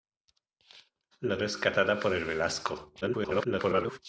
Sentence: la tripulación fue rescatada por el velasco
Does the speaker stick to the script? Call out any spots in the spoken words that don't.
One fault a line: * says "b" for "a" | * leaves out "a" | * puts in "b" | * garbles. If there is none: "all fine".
* leaves out "tripulación fue"
* garbles